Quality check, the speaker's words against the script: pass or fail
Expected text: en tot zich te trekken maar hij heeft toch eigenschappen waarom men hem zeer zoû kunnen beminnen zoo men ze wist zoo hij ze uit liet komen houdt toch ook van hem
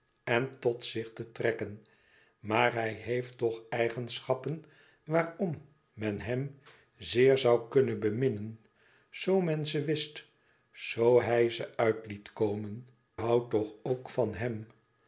pass